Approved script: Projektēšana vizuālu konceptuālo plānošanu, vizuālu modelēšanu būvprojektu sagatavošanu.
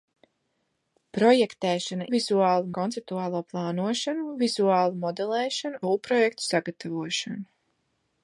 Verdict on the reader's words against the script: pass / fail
pass